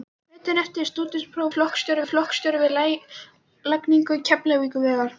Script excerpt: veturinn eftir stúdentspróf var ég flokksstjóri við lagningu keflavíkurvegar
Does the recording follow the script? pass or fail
fail